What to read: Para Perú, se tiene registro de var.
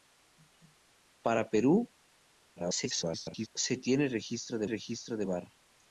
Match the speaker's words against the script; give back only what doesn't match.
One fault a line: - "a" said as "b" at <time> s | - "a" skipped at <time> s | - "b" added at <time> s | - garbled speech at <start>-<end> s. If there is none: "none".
- garbled speech at 2.6-3.5 s
- "registro de" added at 4.7 s